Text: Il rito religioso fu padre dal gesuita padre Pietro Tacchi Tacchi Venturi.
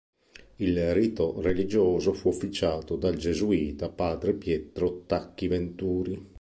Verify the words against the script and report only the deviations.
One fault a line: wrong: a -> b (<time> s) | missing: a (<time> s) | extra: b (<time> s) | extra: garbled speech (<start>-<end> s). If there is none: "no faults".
wrong: padre -> officiato (2.3 s)
missing: Tacchi (5.5 s)